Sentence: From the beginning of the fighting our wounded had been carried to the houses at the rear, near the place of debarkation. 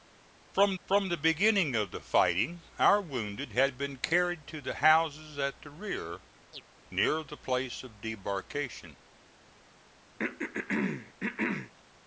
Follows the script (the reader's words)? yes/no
no